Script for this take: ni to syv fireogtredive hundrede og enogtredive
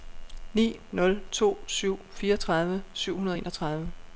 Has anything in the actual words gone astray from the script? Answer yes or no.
yes